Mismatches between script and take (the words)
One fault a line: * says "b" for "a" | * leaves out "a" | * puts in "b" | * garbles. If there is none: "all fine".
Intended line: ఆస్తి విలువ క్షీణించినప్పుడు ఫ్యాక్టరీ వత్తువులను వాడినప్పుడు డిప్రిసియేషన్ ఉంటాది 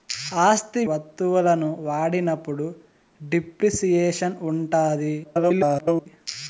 * leaves out "విలువ క్షీణించినప్పుడు ఫ్యాక్టరీ"
* garbles